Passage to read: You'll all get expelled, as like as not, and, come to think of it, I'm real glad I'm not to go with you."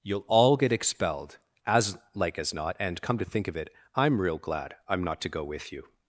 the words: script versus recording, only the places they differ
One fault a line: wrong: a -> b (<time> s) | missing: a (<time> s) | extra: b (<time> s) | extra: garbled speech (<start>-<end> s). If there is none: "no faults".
no faults